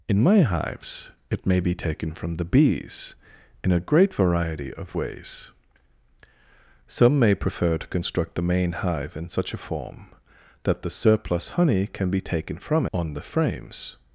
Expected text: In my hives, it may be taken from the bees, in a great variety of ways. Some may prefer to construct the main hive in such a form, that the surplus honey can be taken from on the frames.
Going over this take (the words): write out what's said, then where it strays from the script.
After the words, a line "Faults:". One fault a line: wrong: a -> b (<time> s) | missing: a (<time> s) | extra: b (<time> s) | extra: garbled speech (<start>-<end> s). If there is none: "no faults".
In my hives, it may be taken from the bees, in a great variety of ways. Some may prefer to construct the main hive in such a form, that the surplus honey can be taken from on the frames.
Faults:
no faults